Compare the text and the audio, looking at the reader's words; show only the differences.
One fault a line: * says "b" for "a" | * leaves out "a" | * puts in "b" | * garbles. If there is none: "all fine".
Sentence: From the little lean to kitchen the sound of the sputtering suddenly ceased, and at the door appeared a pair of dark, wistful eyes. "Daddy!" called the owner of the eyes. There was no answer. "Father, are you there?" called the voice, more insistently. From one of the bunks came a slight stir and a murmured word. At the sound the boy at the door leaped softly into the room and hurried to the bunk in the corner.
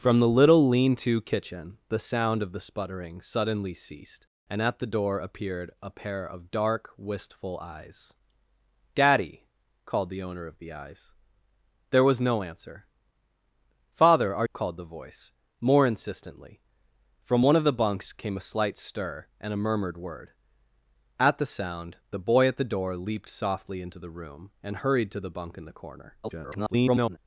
* leaves out "you there"
* garbles